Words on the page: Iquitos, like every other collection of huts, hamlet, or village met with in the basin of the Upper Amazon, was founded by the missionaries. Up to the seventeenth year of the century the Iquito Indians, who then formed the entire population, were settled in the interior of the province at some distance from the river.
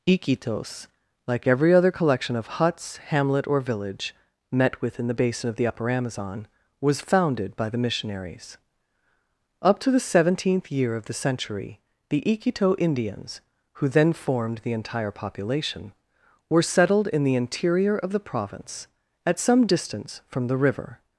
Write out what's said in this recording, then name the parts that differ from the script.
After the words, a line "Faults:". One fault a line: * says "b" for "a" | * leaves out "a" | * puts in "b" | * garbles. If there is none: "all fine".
Iquitos, like every other collection of huts, hamlet, or village met with in the basin of the Upper Amazon, was founded by the missionaries. Up to the seventeenth year of the century the Iquito Indians, who then formed the entire population, were settled in the interior of the province at some distance from the river.
Faults:
all fine